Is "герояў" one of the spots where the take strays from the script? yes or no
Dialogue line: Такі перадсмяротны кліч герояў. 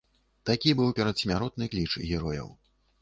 no